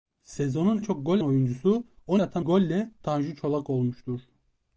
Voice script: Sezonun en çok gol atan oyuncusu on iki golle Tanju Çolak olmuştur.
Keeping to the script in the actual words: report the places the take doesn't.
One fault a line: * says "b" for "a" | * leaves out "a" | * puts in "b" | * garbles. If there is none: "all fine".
* leaves out "en"
* leaves out "atan"
* says "atan" for "iki"